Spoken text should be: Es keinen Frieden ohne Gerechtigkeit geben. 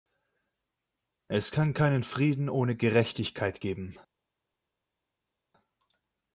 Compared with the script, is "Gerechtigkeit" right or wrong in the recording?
right